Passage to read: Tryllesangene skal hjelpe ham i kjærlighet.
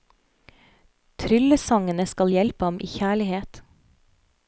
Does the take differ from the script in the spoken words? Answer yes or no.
no